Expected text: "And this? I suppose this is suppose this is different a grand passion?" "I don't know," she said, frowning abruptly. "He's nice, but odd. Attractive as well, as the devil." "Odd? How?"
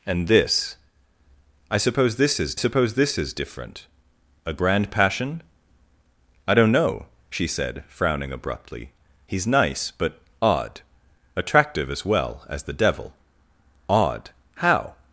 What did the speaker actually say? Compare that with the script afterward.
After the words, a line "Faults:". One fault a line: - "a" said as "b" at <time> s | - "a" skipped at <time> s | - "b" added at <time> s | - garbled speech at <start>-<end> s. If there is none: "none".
"And this? I suppose this is suppose this is different a grand passion?" "I don't know," she said, frowning abruptly. "He's nice, but odd. Attractive as well, as the devil." "Odd? How?"
Faults:
none